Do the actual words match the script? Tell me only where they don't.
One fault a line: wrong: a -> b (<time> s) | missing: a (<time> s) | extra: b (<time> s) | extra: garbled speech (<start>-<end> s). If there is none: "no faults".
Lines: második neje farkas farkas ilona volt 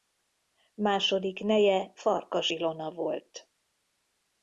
missing: farkas (2.5 s)